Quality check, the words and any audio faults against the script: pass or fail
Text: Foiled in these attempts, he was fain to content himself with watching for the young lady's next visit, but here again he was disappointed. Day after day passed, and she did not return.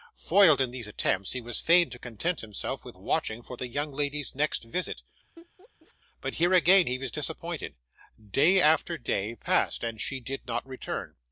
fail